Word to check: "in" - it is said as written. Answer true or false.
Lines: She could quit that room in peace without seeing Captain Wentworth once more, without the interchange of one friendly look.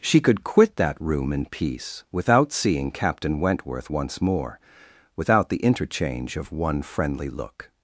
true